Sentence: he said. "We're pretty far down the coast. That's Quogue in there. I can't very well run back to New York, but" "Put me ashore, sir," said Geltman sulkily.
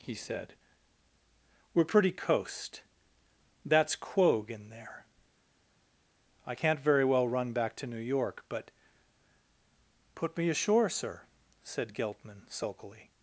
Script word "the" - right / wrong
wrong